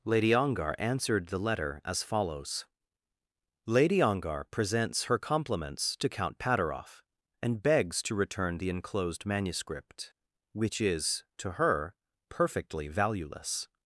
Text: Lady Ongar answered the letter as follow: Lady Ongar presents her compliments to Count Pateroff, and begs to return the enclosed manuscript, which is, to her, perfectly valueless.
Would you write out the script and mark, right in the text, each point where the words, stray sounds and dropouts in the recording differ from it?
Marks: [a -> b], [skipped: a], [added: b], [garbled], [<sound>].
Lady Ongar answered the letter as [follow: -> follows] Lady Ongar presents her compliments to Count Pateroff, and begs to return the enclosed manuscript, which is, to her, perfectly valueless.